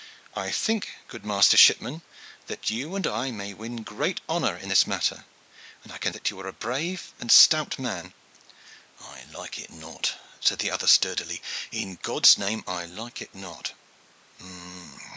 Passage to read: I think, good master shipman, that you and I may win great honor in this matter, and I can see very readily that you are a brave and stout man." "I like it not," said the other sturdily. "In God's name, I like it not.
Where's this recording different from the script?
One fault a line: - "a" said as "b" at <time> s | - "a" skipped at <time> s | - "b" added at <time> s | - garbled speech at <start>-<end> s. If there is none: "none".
- "see very readily" skipped at 6.1 s